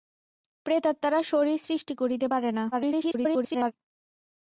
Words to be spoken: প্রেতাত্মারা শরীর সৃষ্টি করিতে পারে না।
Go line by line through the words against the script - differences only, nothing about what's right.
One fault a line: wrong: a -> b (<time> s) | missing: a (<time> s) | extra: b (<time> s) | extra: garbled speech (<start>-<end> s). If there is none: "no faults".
extra: garbled speech (2.7-3.7 s)